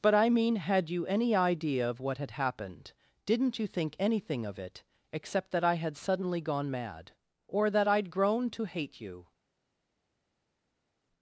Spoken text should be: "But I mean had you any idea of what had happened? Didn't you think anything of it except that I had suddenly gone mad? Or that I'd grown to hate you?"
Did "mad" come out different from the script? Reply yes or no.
no